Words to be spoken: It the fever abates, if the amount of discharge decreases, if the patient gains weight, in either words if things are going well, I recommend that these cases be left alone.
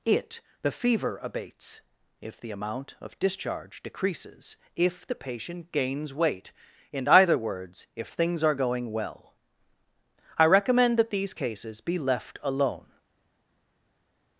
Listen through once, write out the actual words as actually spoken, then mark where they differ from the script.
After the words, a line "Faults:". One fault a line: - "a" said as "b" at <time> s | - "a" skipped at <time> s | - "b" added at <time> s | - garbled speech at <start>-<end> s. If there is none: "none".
It the fever abates, if the amount of discharge decreases, if the patient gains weight, in either words if things are going well, I recommend that these cases be left alone.
Faults:
none